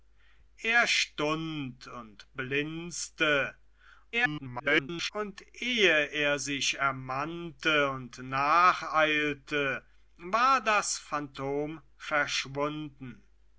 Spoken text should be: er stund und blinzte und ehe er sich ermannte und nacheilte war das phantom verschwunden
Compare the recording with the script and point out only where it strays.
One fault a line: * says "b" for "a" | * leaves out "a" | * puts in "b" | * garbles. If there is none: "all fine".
* garbles